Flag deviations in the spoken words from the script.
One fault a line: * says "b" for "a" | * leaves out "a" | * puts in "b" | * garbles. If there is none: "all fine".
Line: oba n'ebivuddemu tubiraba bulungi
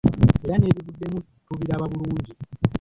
* says "era" for "oba"